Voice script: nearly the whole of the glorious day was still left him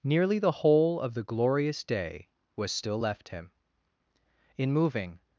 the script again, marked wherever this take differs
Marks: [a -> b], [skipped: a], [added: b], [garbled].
nearly the whole of the glorious day was still left him [added: in moving]